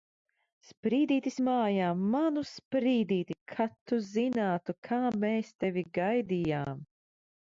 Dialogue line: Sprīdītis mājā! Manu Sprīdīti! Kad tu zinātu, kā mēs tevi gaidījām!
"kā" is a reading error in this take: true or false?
false